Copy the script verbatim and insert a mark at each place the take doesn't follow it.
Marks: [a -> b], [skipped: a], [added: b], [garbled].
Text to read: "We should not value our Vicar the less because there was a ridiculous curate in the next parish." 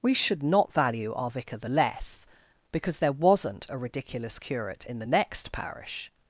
"We should not value our Vicar the less because there [was -> wasn't] a ridiculous curate in the next parish."